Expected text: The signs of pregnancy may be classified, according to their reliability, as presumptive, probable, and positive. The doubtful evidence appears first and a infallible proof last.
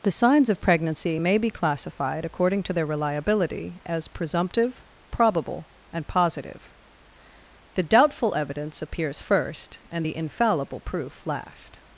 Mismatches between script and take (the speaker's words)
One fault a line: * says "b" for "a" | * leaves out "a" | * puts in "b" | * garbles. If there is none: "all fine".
* says "the" for "a"